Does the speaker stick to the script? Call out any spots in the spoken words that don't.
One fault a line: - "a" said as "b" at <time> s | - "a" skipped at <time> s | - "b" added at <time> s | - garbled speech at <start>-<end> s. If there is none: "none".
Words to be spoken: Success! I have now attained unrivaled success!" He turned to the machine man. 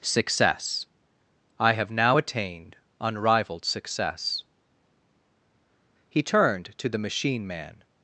none